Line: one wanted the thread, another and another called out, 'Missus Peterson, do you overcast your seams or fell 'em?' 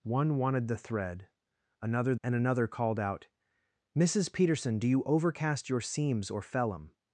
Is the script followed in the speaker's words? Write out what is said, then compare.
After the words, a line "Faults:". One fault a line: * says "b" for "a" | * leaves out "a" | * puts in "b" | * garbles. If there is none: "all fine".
one wanted the thread, another and another called out, 'Missus Peterson, do you overcast your seams or fell 'em?'
Faults:
all fine